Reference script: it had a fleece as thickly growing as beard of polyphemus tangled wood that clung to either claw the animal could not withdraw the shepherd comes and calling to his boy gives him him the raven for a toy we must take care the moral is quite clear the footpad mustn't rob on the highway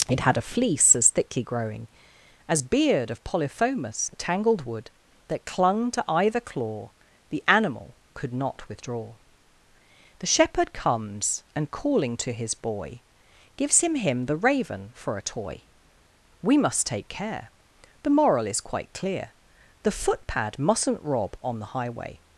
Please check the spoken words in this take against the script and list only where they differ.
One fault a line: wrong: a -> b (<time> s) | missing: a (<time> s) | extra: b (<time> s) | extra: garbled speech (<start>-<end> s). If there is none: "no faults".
no faults